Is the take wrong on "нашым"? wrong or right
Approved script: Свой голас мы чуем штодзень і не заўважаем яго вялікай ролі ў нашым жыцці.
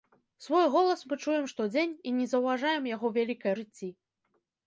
wrong